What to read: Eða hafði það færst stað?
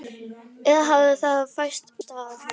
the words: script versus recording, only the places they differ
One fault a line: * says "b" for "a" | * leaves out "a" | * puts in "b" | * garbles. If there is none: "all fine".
all fine